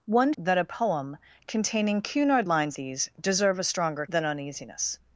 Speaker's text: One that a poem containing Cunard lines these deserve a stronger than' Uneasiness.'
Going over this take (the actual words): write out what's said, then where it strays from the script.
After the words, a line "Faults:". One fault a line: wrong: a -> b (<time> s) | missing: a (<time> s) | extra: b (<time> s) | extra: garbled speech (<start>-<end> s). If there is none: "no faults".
One that a poem containing Cunard lines these deserve a stronger than' Uneasiness.'
Faults:
no faults